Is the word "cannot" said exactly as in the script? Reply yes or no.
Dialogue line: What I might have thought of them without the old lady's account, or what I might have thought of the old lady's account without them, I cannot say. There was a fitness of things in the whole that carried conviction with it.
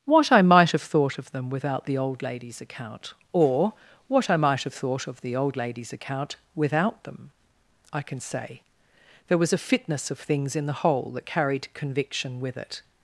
no